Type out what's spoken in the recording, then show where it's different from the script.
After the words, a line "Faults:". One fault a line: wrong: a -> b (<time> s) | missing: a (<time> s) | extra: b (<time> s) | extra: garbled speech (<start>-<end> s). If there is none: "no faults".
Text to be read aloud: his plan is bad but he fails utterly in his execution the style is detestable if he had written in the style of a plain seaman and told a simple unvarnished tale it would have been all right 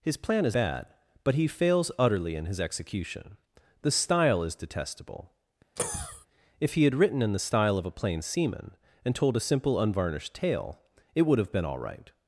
his plan is bad but he fails utterly in his execution the style is detestable if he had written in the style of a plain seaman and told a simple unvarnished tale it would have been all right
Faults:
no faults